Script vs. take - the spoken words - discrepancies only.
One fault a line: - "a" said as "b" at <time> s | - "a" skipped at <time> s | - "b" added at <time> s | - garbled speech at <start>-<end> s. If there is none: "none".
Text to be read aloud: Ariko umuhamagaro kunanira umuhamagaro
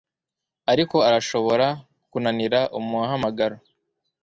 - "umuhamagaro" said as "arashobora" at 1.1 s